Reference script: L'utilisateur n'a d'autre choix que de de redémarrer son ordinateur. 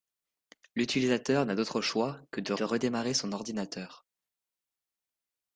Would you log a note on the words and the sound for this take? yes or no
no